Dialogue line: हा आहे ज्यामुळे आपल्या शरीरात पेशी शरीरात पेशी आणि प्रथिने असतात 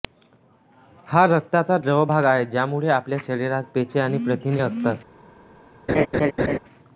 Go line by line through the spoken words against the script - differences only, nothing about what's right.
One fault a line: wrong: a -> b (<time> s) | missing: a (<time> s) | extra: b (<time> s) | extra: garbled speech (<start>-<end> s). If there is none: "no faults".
extra: रक्ताचा द्रव भाग (1.3 s)
missing: शरीरात पेशी (4.0 s)